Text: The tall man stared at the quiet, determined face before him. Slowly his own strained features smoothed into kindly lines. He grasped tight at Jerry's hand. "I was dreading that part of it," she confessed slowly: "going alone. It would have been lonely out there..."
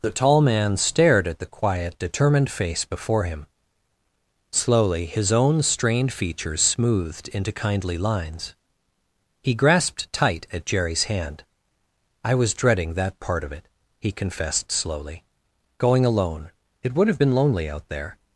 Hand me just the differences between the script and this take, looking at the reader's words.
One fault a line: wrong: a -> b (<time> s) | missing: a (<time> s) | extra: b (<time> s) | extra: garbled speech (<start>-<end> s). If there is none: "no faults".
wrong: she -> he (14.0 s)